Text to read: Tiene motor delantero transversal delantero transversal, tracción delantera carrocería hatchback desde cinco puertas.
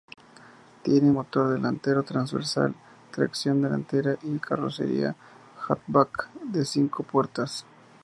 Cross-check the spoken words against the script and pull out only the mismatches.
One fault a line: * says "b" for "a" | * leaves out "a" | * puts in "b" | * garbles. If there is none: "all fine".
* leaves out "delantero transversal"
* puts in "y"
* says "de" for "desde"